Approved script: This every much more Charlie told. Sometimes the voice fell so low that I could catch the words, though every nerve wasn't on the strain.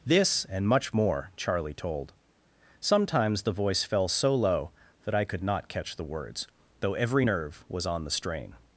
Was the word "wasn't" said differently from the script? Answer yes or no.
yes